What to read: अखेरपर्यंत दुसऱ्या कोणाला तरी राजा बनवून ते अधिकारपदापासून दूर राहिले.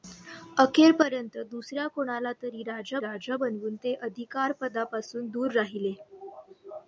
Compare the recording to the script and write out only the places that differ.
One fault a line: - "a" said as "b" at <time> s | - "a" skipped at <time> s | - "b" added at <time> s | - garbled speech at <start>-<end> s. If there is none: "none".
- "राजा" added at 3.0 s